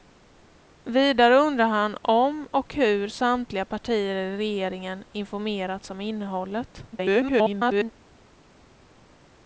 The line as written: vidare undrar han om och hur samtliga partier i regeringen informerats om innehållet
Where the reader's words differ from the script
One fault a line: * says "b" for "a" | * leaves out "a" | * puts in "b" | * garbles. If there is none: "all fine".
* garbles